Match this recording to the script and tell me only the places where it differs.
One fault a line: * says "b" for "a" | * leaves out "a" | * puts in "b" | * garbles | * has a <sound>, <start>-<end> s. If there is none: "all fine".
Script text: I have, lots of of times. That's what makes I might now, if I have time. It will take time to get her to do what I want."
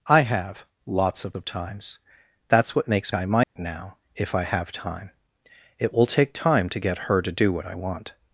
* has a dropout, 3.4-3.6 s